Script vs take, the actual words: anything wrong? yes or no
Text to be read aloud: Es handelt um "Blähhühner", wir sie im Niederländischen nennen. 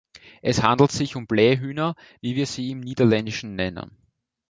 yes